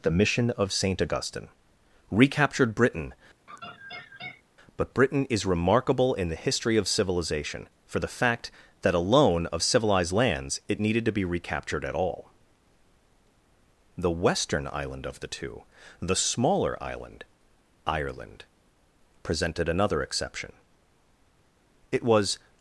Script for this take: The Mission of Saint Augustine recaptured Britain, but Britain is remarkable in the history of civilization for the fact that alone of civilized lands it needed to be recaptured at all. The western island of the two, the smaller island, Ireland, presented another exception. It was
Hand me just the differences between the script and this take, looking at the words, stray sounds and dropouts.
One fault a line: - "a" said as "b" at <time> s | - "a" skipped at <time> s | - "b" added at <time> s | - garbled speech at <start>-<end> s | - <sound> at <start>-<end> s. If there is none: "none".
- laugh at 3.5-4.4 s